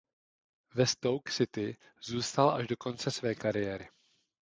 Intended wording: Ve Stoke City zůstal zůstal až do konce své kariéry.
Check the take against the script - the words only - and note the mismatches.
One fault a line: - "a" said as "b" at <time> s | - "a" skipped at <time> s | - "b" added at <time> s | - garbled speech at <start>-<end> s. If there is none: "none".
- "zůstal" skipped at 2.5 s